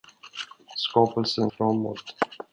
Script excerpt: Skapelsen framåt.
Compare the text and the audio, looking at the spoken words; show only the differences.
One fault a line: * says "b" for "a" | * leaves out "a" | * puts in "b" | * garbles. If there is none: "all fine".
all fine